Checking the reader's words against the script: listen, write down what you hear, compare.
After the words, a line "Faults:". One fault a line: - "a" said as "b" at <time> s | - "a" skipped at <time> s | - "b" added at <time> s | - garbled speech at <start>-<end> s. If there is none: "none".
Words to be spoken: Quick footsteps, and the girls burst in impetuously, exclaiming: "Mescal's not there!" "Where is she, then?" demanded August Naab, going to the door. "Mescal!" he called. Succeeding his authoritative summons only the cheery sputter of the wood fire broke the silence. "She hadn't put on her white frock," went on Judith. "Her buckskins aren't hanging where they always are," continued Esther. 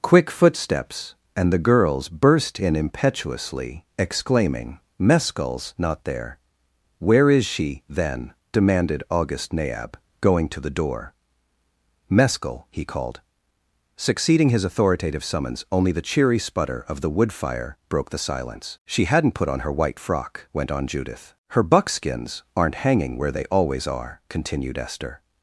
Quick footsteps, and the girls burst in impetuously, exclaiming: "Mescal's not there!" "Where is she, then?" demanded August Naab, going to the door. "Mescal!" he called. Succeeding his authoritative summons only the cheery sputter of the wood fire broke the silence. "She hadn't put on her white frock," went on Judith. "Her buckskins aren't hanging where they always are," continued Esther.
Faults:
none